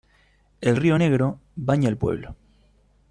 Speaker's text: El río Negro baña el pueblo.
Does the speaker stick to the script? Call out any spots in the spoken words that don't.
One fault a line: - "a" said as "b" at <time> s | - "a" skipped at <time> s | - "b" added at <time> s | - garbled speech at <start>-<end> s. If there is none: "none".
none